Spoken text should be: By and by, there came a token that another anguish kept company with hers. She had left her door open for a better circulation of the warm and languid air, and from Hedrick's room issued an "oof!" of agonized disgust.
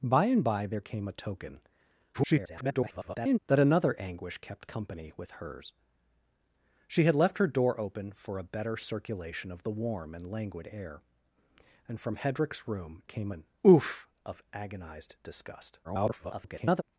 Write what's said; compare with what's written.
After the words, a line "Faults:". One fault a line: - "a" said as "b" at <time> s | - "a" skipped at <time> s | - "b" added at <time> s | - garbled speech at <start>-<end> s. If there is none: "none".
By and by, there came a token [garbled] that another anguish kept company with hers. She had left her door open for a better circulation of the warm and languid air, and from Hedrick's room came an "oof!" of agonized disgust. [garbled]
Faults:
- garbled speech at 2.1-3.4 s
- "issued" said as "came" at 13.0 s
- garbled speech at 15.8-16.8 s